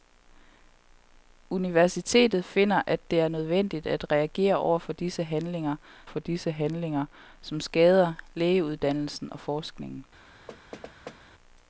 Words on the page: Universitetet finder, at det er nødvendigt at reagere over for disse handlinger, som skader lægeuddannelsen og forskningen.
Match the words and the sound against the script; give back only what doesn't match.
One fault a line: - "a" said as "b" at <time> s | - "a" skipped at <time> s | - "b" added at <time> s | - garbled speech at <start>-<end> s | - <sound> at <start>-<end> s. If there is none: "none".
- "for disse handlinger" added at 6.1 s
- thud at 10.5-11.2 s